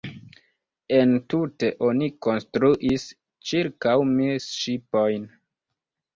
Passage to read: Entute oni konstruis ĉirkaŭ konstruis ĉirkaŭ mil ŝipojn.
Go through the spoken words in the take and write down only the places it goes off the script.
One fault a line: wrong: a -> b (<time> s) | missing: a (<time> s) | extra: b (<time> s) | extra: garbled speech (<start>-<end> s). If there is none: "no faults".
missing: konstruis ĉirkaŭ (4.0 s)